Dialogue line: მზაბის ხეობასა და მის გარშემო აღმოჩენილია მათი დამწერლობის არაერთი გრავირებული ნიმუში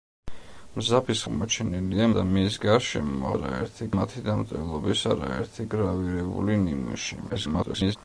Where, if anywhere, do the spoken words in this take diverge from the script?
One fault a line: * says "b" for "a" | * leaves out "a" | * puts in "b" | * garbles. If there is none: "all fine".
* says "აღმოჩენილია" for "ხეობასა"
* says "არაერთი" for "აღმოჩენილია"
* garbles